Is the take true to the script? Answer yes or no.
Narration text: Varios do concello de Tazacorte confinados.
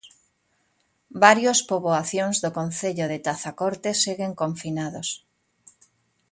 no